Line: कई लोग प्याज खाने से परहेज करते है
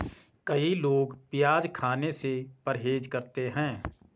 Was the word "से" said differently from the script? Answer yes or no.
no